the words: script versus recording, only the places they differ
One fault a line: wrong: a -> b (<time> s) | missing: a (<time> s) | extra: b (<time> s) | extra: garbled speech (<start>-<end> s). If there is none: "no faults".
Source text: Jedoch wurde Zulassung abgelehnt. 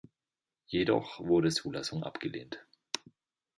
no faults